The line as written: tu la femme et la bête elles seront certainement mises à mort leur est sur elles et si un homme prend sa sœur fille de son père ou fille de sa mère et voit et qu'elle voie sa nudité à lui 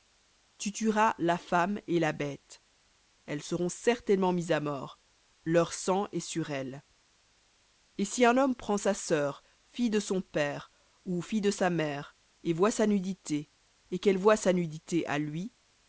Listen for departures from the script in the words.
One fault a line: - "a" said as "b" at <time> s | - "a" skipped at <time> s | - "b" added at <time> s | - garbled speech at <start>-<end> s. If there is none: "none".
- "tueras" added at 0.7 s
- "sang" added at 5.7 s
- "sa nudité" added at 12.7 s